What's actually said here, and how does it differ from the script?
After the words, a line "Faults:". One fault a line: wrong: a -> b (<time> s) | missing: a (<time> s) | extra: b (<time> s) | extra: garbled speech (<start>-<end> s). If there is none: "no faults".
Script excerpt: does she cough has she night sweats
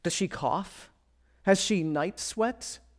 does she cough has she night sweats
Faults:
no faults